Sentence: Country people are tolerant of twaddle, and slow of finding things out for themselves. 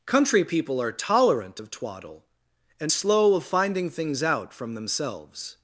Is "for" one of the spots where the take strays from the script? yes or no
yes